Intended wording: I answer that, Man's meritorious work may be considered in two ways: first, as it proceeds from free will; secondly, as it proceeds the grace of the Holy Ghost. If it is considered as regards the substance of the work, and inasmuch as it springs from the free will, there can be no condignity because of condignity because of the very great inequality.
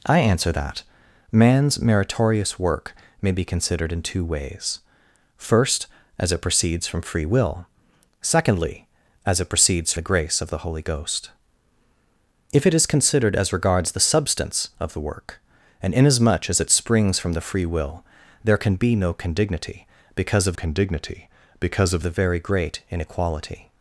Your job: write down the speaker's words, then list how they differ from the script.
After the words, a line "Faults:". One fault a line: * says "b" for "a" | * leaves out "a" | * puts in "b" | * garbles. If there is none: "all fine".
I answer that, Man's meritorious work may be considered in two ways: first, as it proceeds from free will; secondly, as it proceeds the grace of the Holy Ghost. If it is considered as regards the substance of the work, and inasmuch as it springs from the free will, there can be no condignity because of condignity because of the very great inequality.
Faults:
all fine